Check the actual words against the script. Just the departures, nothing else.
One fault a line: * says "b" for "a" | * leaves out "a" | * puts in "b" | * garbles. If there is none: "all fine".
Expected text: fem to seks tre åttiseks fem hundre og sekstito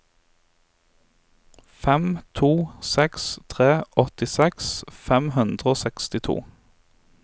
all fine